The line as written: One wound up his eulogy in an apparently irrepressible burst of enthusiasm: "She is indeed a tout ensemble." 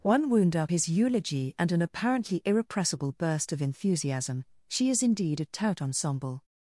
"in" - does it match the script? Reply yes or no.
no